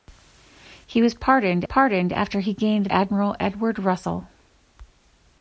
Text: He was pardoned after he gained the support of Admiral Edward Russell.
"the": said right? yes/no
no